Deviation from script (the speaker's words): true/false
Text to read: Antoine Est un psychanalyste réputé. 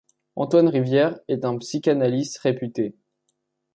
true